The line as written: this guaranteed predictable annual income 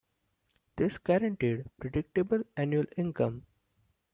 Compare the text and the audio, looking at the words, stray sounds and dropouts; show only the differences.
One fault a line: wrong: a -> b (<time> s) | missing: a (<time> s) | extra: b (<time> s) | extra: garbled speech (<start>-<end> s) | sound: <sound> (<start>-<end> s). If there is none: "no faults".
no faults